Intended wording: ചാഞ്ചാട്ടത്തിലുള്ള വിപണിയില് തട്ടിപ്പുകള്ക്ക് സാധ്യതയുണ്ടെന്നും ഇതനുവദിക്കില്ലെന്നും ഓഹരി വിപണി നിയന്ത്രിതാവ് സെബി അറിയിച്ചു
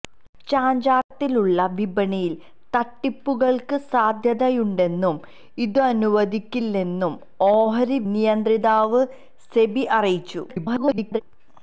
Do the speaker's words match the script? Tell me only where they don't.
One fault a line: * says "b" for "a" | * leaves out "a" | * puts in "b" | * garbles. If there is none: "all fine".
* leaves out "വിപണി"
* garbles